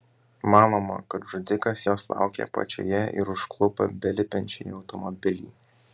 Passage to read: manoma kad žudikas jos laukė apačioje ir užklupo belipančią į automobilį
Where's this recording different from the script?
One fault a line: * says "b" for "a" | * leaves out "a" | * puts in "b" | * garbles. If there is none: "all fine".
all fine